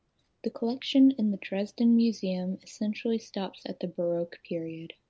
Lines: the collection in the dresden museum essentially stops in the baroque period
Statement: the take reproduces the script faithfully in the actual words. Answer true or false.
false